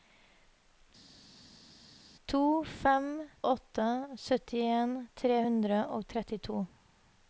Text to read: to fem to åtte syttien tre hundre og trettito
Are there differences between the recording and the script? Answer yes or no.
yes